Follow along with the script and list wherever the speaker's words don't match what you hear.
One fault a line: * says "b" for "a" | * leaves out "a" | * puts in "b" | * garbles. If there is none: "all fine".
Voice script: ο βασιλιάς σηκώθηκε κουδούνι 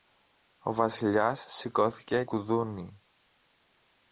all fine